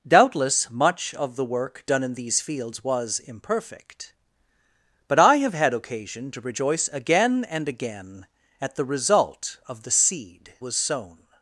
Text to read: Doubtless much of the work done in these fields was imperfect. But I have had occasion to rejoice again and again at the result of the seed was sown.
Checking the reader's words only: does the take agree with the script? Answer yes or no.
yes